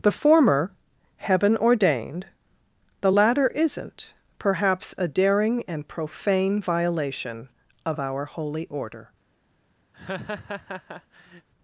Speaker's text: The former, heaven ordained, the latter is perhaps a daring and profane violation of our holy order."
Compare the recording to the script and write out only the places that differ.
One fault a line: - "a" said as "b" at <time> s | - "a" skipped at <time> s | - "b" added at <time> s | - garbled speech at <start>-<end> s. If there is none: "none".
- "is" said as "isn't" at 3.5 s